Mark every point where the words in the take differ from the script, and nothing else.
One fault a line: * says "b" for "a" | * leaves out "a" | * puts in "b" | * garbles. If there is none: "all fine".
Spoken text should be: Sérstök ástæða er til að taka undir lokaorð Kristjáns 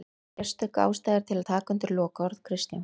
all fine